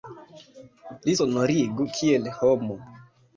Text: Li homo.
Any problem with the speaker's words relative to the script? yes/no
yes